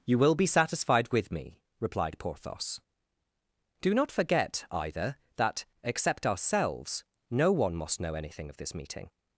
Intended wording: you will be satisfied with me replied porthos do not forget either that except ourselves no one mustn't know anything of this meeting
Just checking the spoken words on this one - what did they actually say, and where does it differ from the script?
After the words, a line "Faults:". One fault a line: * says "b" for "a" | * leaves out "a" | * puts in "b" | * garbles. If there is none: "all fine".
you will be satisfied with me replied porthos do not forget either that except ourselves no one must know anything of this meeting
Faults:
* says "must" for "mustn't"